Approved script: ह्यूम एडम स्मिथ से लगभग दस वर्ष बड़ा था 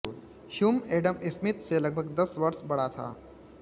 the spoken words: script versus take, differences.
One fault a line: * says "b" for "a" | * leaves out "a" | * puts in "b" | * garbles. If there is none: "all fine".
all fine